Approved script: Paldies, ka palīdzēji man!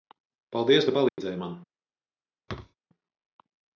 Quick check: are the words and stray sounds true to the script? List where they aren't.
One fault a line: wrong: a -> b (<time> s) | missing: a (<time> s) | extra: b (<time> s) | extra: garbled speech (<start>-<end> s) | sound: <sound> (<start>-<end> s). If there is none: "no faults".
sound: dropout (1.1-1.2 s)
sound: thud (2.5-2.7 s)